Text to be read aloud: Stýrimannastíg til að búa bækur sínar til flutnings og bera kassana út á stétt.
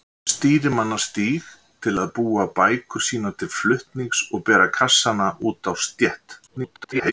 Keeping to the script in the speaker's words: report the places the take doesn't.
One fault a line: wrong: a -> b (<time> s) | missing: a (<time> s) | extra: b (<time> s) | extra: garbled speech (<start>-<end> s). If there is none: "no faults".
extra: garbled speech (6.5-7.1 s)